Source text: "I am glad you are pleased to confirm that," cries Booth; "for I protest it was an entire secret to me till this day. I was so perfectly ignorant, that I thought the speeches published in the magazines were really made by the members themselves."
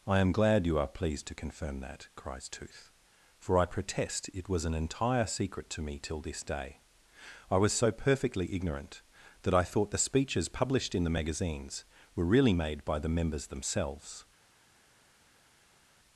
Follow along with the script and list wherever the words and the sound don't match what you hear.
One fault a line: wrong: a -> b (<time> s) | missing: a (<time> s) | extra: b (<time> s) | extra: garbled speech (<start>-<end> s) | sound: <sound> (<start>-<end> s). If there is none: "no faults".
wrong: Booth -> Tooth (2.5 s)